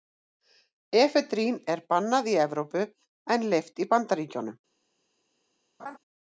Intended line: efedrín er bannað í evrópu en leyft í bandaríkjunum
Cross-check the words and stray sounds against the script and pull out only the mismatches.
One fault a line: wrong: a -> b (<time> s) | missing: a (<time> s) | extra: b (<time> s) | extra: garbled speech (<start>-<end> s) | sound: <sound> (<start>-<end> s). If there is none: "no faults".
sound: laugh (5.8-6.0 s)